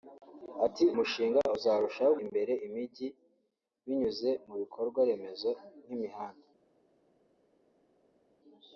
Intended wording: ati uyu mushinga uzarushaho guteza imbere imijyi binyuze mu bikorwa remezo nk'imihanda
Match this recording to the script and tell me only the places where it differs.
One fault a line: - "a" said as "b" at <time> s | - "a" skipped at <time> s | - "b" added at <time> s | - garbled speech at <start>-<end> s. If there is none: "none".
- "uyu" skipped at 0.8 s
- "guteza" skipped at 2.1 s